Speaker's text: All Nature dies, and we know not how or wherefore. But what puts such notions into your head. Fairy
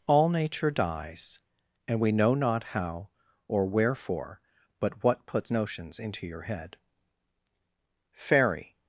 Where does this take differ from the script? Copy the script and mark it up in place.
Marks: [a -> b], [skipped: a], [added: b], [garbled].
All Nature dies, and we know not how or wherefore. But what puts [skipped: such] notions into your head. Fairy